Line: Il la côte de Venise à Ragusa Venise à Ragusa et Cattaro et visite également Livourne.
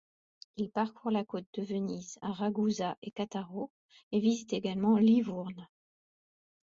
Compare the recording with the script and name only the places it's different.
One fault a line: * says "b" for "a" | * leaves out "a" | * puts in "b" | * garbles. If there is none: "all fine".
* puts in "parcourt"
* leaves out "Venise à Ragusa"